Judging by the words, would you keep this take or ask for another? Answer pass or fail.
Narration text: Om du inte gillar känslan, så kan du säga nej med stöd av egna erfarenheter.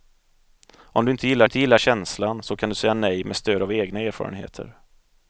fail